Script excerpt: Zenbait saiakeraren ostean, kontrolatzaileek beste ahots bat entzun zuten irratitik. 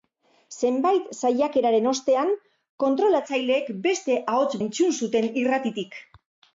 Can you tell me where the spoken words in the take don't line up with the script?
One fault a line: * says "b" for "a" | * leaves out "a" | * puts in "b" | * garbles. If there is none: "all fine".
* leaves out "bat"